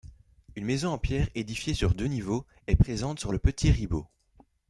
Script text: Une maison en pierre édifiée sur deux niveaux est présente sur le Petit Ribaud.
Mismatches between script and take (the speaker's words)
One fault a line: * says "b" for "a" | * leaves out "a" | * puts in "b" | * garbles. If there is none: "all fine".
all fine